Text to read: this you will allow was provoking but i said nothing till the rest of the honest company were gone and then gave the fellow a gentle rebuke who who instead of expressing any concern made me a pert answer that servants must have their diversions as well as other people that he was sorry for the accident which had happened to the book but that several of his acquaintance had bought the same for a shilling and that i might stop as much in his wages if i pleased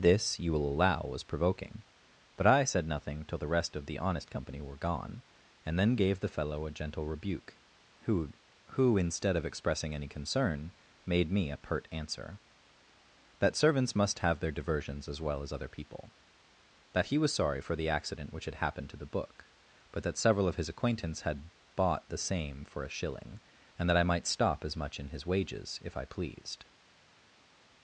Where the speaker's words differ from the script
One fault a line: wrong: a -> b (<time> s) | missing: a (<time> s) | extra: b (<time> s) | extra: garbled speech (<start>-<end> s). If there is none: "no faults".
no faults